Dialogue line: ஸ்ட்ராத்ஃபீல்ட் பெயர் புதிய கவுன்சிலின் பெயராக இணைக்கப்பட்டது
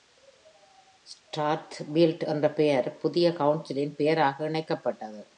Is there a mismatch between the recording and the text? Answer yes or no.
yes